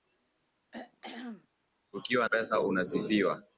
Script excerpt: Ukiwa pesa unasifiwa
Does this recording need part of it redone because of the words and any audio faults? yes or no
yes